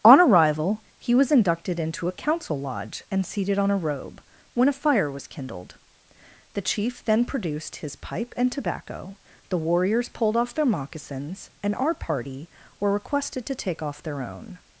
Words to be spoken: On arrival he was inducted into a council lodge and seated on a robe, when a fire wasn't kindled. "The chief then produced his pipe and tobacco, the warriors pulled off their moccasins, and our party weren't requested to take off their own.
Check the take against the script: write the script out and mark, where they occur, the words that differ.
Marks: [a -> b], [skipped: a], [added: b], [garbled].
On arrival he was inducted into a council lodge and seated on a robe, when a fire [wasn't -> was] kindled. "The chief then produced his pipe and tobacco, the warriors pulled off their moccasins, and our party [weren't -> were] requested to take off their own.